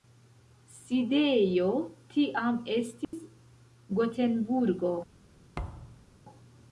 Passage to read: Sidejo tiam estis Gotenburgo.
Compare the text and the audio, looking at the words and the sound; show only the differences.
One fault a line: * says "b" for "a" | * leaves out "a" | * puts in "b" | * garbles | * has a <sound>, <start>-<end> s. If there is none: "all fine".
* has a dropout, 3.0-3.1 s
* has a thud, 5.5-6.1 s